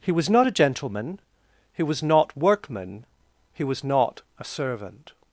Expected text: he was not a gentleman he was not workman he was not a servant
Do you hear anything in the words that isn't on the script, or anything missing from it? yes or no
no